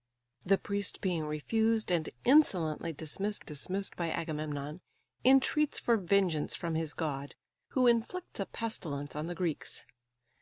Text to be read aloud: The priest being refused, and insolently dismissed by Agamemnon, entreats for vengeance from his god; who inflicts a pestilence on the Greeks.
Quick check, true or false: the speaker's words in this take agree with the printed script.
false